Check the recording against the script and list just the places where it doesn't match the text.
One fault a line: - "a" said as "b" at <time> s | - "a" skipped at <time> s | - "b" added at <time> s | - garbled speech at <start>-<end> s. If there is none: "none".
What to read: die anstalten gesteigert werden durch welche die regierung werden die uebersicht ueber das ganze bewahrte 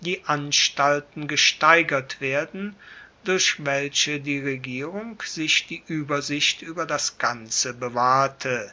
- "werden" said as "sich" at 5.2 s